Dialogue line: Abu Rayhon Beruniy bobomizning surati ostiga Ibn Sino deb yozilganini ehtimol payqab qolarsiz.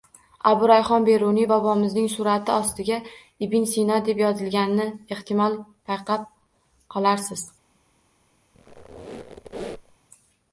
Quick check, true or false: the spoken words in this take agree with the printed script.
true